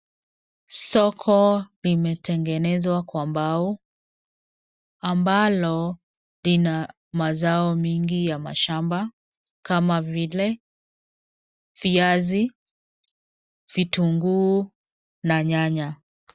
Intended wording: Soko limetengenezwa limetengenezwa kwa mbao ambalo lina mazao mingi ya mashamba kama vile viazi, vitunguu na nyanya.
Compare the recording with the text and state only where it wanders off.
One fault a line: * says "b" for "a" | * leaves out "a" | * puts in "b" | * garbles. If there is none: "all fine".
* leaves out "limetengenezwa"